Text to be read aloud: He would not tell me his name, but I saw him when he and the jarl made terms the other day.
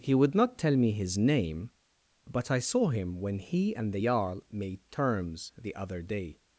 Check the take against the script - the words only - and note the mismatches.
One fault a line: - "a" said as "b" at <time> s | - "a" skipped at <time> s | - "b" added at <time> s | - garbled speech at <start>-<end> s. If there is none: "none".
none